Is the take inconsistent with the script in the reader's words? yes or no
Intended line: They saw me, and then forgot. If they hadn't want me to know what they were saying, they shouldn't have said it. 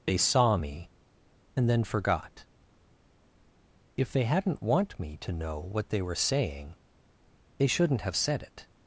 no